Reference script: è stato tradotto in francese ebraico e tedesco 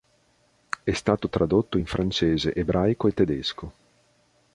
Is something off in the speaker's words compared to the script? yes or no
no